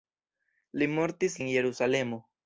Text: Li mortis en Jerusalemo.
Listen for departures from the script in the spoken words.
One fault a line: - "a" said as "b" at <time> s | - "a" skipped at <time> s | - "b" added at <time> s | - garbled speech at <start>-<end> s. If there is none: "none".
none